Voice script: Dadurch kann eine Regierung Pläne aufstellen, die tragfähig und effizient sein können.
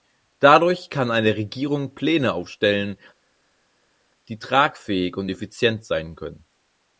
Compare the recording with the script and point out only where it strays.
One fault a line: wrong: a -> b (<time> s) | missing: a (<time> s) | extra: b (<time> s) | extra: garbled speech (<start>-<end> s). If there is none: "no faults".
no faults